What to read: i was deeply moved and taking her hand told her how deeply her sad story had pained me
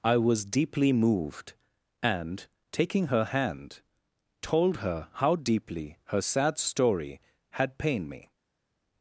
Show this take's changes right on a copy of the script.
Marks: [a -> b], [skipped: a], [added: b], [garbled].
i was deeply moved and taking her hand told her how deeply her sad story had pained me